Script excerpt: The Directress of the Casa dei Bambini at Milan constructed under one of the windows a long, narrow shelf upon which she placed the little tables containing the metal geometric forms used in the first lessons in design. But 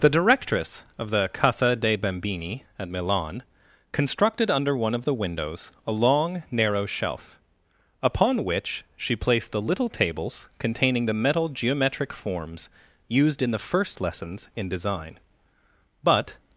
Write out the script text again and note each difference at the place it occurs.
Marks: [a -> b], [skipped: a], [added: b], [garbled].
The Directress of the Casa dei Bambini at Milan constructed under one of the windows a long, narrow shelf upon which she placed the little tables containing the metal geometric forms used in the first lessons in design. But